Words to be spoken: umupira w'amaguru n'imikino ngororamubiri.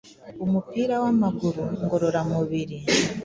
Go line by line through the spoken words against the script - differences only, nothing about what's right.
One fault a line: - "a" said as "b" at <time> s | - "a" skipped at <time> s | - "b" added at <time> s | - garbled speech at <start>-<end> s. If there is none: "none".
- "n'imikino" skipped at 1.6 s